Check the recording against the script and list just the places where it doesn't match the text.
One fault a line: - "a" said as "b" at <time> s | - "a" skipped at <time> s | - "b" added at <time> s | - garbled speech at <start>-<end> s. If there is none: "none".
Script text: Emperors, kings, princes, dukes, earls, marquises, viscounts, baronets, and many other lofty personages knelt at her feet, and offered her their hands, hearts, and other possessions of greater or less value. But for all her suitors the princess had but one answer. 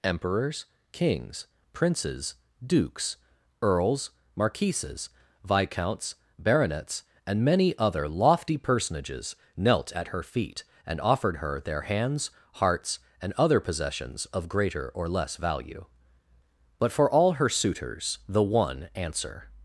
- "princess had but" skipped at 18.4 s